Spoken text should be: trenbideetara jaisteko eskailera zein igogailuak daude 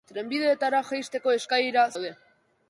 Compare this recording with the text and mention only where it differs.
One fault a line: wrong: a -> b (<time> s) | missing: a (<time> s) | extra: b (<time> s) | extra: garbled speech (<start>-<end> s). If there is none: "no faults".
missing: zein igogailuak (1.9 s)